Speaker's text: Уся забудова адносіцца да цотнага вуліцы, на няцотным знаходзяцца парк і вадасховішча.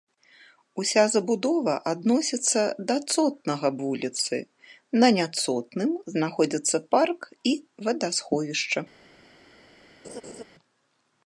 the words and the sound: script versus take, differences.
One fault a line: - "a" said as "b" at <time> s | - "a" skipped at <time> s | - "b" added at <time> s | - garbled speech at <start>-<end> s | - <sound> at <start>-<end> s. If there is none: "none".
- laugh at 10.0-10.4 s